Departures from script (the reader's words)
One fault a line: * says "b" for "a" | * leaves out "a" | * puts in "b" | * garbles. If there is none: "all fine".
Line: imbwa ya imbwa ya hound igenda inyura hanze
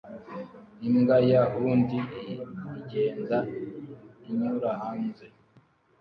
* leaves out "imbwa ya"